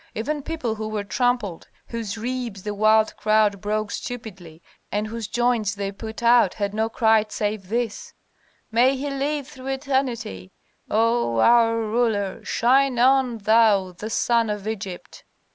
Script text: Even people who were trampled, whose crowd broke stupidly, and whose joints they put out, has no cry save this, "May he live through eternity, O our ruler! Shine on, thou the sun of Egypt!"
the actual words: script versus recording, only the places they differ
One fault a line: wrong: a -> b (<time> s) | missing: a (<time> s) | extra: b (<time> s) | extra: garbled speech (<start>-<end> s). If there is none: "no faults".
extra: ribs the wild (2.2 s)
wrong: has -> had (6.5 s)